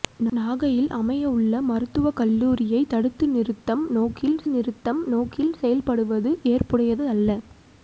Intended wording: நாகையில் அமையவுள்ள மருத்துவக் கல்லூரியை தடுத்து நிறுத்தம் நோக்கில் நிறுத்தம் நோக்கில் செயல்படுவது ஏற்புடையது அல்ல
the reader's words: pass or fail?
pass